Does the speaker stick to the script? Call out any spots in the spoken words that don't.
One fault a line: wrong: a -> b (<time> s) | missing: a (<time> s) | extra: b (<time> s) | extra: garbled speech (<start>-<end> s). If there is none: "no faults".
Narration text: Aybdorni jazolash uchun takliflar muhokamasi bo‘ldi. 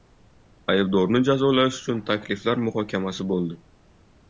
no faults